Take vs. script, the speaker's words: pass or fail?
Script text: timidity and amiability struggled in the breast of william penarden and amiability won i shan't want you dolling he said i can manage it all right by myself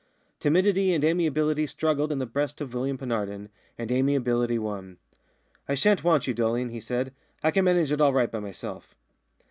pass